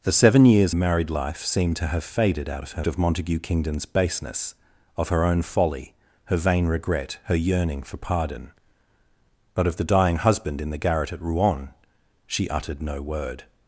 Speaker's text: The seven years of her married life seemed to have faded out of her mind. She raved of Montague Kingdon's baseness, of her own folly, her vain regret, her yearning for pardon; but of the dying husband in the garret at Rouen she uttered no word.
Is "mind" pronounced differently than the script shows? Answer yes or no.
yes